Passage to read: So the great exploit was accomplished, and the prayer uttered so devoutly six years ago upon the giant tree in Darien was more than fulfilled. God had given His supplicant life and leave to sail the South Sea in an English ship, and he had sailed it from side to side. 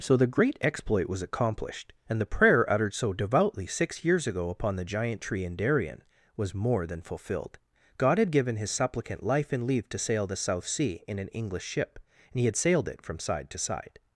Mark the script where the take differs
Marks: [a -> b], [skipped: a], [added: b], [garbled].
So the great exploit was accomplished, and the prayer uttered so devoutly six years ago upon the giant tree in Darien was more than fulfilled. God had given His supplicant life and leave to sail the South Sea in an English ship, and he had sailed it from side to side.